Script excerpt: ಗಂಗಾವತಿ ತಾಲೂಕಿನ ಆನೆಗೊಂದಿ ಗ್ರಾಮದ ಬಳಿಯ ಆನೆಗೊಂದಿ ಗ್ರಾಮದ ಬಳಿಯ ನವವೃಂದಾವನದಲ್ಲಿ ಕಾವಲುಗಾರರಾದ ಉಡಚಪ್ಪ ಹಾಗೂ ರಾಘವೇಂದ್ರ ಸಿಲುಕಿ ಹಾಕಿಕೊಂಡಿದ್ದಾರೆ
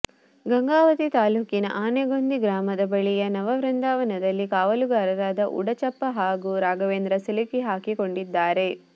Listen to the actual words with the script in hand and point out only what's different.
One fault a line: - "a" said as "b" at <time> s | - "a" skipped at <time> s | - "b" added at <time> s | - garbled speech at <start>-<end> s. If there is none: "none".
- "ಆನೆಗೊಂದಿ ಗ್ರಾಮದ ಬಳಿಯ" skipped at 3.2 s